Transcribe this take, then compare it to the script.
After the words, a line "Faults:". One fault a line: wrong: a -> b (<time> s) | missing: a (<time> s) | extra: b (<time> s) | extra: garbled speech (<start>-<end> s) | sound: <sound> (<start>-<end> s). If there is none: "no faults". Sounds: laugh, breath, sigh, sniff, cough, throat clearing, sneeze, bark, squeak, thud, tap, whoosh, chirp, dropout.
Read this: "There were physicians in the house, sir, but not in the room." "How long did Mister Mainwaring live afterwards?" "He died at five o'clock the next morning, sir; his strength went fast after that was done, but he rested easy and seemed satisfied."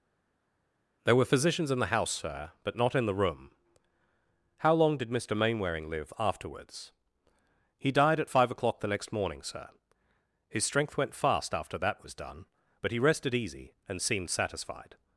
"There were physicians in the house, sir, but not in the room." "How long did Mister Mainwaring live afterwards?" "He died at five o'clock the next morning, sir; his strength went fast after that was done, but he rested easy and seemed satisfied."
Faults:
no faults